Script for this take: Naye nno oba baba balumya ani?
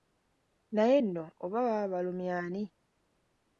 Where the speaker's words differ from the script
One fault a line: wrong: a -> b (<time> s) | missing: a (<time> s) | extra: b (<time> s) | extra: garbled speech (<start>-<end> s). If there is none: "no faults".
no faults